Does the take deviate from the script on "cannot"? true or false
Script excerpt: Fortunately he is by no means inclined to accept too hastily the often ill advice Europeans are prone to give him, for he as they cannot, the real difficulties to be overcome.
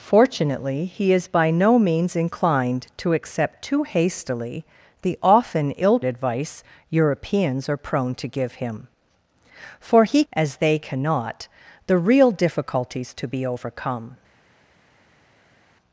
false